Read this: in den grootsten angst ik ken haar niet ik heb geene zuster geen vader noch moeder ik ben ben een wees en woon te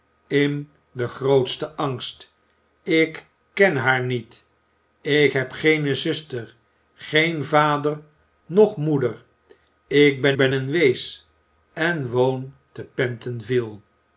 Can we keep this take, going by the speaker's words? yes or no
yes